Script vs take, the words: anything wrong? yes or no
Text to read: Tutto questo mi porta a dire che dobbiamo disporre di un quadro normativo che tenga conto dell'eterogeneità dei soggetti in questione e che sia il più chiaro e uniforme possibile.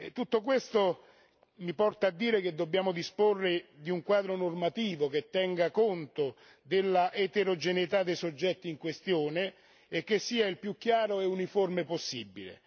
no